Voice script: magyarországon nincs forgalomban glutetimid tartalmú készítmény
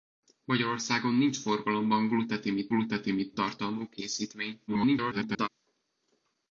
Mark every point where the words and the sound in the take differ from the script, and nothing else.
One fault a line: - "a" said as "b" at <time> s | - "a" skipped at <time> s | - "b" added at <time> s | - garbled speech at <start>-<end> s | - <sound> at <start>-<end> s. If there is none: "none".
- "glutetimid" added at 2.7 s
- garbled speech at 4.7-5.5 s